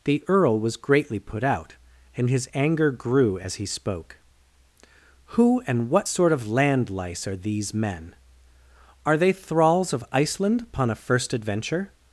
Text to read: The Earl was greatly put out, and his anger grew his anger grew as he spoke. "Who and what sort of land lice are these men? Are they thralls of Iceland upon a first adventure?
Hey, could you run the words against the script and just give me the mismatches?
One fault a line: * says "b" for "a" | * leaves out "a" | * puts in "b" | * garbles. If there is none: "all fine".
* leaves out "his anger grew"